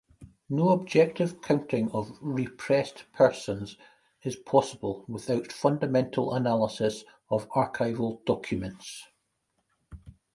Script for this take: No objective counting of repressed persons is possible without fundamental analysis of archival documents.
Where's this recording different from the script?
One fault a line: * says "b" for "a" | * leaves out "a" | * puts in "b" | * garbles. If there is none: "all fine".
all fine